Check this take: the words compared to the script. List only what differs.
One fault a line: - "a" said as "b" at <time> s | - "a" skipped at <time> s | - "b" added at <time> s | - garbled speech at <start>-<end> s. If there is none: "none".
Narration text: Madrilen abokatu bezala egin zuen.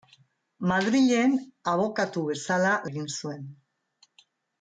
none